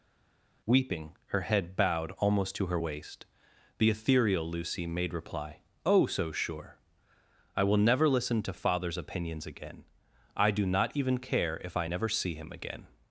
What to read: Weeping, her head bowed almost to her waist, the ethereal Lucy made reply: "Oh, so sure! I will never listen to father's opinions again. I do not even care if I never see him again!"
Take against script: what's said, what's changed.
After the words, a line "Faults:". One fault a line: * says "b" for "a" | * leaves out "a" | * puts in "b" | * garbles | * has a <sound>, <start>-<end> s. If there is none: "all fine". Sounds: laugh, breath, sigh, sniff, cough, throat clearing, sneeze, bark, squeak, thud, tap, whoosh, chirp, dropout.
Weeping, her head bowed almost to her waist, the ethereal Lucy made reply: "Oh, so sure! I will never listen to father's opinions again. I do not even care if I never see him again!"
Faults:
all fine